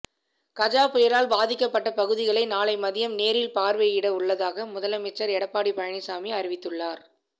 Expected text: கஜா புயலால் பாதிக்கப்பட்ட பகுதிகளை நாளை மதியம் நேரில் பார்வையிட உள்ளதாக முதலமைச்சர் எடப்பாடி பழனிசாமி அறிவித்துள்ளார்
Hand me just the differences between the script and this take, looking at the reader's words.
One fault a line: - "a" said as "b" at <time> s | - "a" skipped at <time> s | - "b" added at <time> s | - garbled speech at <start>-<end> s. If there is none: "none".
none